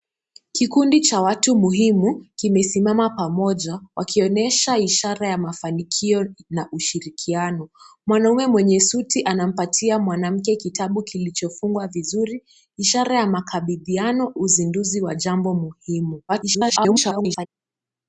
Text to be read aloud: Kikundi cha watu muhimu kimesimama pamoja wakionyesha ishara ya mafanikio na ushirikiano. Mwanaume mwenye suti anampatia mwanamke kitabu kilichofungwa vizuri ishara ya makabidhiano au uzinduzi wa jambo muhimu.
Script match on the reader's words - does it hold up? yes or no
no